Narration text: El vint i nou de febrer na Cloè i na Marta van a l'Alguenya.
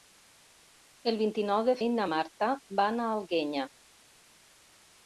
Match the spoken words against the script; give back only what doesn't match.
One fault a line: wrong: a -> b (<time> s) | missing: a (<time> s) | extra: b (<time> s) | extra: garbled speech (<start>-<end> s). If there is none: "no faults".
missing: febrer na Cloè (1.8 s)